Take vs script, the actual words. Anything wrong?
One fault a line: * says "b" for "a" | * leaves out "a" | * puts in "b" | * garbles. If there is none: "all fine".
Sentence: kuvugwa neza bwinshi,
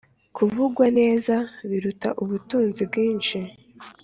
* puts in "biruta ubutunzi"